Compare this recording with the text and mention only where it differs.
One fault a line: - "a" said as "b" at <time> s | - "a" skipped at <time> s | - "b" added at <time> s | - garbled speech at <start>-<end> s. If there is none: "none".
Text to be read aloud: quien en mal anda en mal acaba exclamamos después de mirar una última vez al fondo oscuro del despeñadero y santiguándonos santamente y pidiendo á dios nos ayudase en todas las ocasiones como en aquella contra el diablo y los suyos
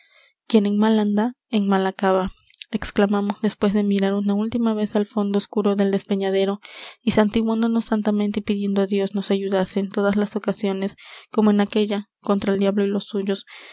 none